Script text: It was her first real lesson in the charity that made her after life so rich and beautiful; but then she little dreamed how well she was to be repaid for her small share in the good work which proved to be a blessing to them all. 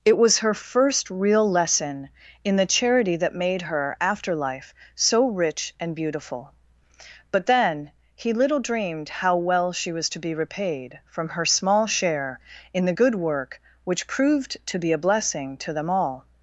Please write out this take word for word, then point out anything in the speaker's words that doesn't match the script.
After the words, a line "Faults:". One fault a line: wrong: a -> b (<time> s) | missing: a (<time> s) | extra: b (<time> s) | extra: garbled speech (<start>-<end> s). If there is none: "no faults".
It was her first real lesson in the charity that made her after life so rich and beautiful; but then he little dreamed how well she was to be repaid from her small share in the good work which proved to be a blessing to them all.
Faults:
wrong: she -> he (8.1 s)
wrong: for -> from (11.1 s)